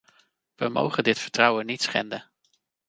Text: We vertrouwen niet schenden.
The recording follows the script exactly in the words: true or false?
false